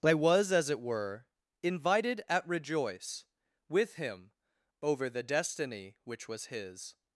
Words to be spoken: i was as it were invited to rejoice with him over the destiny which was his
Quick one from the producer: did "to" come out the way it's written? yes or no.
no